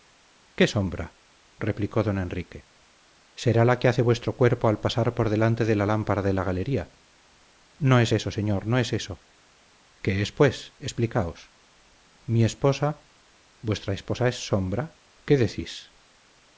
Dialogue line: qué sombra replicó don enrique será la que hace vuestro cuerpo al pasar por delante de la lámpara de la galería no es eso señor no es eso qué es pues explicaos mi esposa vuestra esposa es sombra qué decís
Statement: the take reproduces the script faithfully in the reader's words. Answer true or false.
true